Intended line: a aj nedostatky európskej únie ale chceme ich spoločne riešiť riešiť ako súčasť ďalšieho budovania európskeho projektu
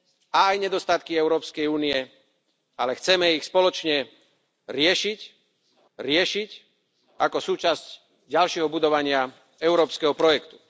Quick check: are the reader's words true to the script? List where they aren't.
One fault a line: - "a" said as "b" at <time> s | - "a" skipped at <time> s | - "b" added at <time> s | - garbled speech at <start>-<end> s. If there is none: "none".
none